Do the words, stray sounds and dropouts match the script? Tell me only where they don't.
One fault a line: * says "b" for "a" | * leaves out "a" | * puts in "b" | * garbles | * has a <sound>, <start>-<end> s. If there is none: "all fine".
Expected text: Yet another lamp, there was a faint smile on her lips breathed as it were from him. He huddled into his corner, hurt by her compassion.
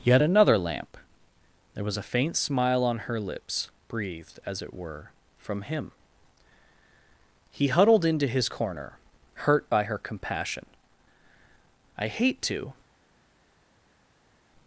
* puts in "I hate to"